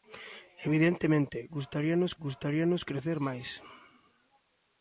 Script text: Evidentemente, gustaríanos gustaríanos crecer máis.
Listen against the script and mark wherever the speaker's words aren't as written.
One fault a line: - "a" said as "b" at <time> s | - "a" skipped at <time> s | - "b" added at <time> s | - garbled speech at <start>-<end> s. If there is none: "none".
none